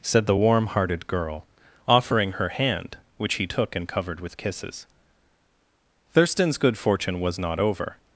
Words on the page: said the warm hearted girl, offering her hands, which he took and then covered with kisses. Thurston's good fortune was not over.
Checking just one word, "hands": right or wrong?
wrong